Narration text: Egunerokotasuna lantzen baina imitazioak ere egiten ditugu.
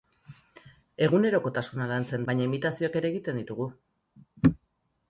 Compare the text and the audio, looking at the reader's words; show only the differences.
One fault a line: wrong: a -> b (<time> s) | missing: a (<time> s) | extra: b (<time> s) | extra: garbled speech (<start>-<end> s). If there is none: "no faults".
no faults